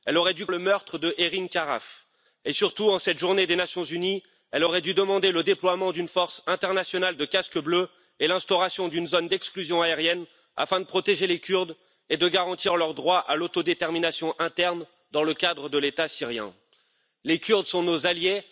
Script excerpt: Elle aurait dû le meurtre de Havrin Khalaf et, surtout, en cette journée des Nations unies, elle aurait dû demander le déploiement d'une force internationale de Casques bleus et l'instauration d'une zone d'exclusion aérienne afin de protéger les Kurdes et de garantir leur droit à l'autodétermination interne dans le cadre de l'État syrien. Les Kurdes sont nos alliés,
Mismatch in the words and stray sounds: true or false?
false